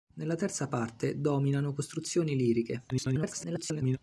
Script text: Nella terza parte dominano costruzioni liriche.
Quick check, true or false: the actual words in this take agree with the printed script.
false